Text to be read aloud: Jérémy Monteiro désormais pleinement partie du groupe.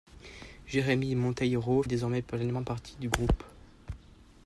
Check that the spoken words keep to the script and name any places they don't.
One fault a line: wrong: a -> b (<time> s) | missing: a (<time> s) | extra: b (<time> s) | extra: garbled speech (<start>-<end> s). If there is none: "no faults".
no faults